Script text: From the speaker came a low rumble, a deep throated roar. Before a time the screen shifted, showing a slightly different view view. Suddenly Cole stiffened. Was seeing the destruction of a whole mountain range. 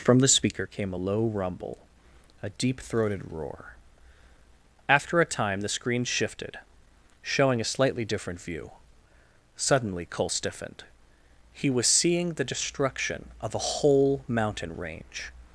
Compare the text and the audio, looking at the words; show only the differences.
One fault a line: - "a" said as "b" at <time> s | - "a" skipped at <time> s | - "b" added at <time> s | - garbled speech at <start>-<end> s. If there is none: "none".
- "Before" said as "After" at 4.9 s
- "view" skipped at 8.7 s
- "He" added at 11.5 s